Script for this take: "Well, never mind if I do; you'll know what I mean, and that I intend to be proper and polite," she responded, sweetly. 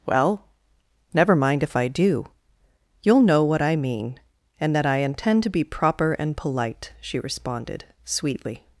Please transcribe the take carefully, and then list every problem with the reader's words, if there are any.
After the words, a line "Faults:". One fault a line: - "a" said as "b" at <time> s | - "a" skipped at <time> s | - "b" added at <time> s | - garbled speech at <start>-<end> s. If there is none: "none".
"Well, never mind if I do; you'll know what I mean, and that I intend to be proper and polite," she responded, sweetly.
Faults:
none